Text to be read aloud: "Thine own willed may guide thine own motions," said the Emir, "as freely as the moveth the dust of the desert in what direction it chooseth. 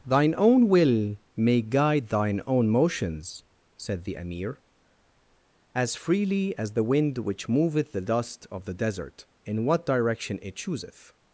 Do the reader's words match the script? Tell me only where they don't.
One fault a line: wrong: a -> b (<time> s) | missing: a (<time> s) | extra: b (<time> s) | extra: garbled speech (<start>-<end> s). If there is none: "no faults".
wrong: willed -> will (0.7 s)
extra: wind which (6.8 s)